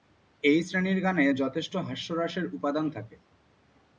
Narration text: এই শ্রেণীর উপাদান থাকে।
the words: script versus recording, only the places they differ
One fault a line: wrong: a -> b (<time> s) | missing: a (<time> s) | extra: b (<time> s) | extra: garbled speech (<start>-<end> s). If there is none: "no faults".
extra: গানে যথেষ্ট হাস্যরসের (1.0 s)